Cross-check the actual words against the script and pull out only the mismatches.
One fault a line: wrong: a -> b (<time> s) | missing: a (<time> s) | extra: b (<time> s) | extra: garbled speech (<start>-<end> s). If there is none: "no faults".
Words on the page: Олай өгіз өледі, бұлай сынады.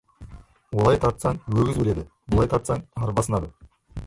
extra: тартсаң (1.0 s)
extra: тартсаң арба (2.5 s)